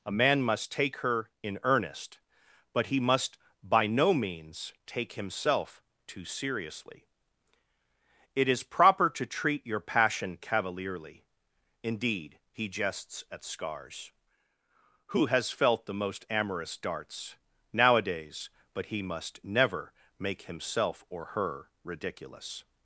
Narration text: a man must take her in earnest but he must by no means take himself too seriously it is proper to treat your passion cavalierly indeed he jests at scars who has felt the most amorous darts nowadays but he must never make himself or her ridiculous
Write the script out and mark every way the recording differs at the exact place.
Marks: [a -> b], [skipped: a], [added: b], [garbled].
a man must take her in earnest but he must by no means take himself too seriously it is proper to treat your passion cavalierly indeed he jests at scars who has felt the most amorous darts nowadays but he must never make himself or her ridiculous